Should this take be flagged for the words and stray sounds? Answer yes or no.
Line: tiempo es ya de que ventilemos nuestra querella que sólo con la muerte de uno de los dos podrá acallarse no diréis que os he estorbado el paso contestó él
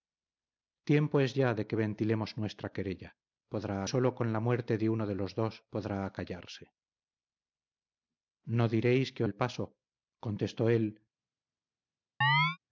yes